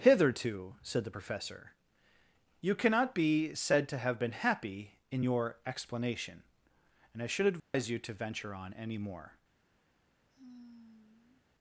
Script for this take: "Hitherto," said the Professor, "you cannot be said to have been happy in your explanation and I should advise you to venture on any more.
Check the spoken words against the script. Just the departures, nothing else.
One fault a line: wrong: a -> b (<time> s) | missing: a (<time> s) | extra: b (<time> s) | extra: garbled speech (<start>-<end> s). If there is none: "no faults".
no faults